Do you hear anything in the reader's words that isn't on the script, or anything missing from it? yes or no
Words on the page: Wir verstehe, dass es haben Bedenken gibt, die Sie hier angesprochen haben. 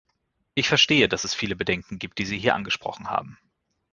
yes